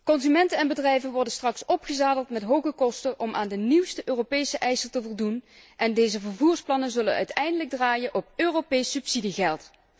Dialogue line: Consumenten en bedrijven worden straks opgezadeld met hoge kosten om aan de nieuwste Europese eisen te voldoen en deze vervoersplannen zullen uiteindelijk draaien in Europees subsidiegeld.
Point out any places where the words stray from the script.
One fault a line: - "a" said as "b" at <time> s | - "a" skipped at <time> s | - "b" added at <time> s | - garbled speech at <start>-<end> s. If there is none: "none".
- "in" said as "op" at 8.1 s